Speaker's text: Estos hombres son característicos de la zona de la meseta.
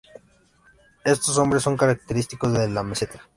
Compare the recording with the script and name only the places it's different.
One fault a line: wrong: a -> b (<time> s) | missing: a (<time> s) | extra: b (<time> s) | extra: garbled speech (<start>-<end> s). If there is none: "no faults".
missing: la zona (2.6 s)